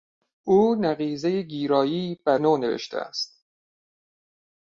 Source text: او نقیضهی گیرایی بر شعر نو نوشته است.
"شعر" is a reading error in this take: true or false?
true